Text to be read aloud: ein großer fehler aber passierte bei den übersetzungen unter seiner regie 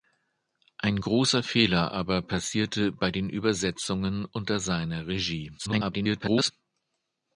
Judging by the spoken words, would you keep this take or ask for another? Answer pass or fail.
fail